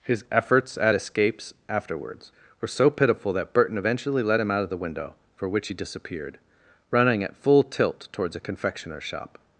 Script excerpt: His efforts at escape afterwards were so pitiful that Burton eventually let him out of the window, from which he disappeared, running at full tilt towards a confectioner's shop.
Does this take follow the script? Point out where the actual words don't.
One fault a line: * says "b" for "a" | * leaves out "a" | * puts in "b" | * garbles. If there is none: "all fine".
* says "escapes" for "escape"
* says "for" for "from"